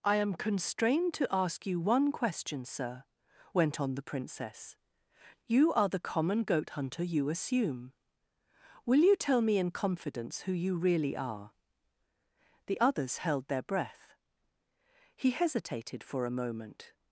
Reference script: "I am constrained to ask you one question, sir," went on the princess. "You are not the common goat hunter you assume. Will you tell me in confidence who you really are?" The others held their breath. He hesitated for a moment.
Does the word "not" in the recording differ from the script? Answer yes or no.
yes